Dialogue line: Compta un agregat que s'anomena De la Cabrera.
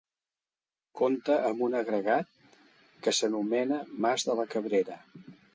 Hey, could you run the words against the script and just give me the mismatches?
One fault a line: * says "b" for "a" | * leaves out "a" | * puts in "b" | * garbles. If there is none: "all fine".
* puts in "amb"
* puts in "Mas"